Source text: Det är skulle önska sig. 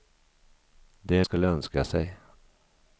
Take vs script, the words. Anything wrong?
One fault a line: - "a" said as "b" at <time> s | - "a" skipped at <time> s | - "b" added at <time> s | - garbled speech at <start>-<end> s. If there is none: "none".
none